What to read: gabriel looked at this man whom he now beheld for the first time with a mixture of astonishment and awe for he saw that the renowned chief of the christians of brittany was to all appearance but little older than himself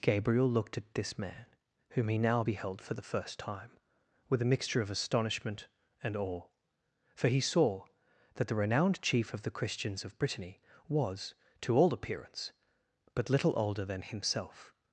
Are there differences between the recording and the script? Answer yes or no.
no